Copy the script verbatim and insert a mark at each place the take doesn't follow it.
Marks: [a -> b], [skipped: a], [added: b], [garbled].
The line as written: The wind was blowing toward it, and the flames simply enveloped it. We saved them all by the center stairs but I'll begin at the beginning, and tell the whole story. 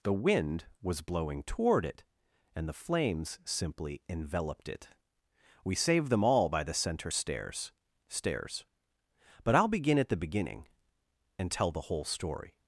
The wind was blowing toward it, and the flames simply enveloped it. We saved them all by the center stairs [added: stairs] but I'll begin at the beginning, and tell the whole story.